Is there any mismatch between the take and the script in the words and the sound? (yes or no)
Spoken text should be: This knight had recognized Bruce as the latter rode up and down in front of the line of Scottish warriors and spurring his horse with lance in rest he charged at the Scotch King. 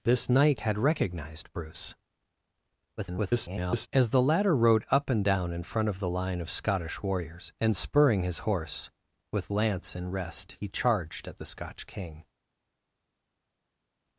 yes